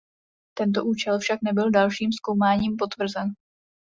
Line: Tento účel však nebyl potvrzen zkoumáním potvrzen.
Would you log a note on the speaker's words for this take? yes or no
yes